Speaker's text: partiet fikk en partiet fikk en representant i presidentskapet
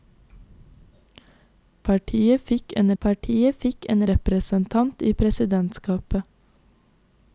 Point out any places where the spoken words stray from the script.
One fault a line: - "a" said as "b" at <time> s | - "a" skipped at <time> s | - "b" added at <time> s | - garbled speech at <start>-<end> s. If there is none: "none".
none